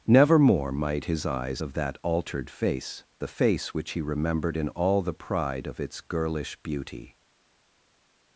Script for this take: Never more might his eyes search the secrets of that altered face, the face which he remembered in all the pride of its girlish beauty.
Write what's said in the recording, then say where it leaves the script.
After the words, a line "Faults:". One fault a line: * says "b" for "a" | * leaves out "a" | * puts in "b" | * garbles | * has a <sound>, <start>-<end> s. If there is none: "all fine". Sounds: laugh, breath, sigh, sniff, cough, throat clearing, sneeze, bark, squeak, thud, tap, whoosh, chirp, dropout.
Never more might his eyes of that altered face, the face which he remembered in all the pride of its girlish beauty.
Faults:
* leaves out "search the secrets"